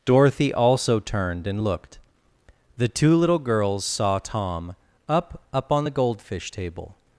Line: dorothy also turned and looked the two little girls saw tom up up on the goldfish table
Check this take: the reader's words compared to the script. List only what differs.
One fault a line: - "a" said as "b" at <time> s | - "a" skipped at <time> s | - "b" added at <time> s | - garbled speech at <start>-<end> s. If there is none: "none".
none